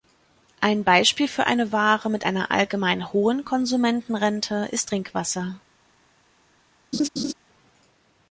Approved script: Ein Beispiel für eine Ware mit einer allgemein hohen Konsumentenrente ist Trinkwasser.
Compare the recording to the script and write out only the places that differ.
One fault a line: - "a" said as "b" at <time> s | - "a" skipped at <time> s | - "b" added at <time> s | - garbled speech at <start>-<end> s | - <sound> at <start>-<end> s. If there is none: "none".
- laugh at 6.9-7.3 s